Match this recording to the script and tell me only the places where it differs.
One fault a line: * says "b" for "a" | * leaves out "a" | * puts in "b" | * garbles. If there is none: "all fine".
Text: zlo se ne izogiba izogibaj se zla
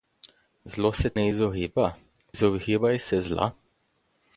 all fine